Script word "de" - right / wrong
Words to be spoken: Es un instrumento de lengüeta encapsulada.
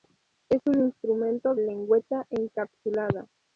wrong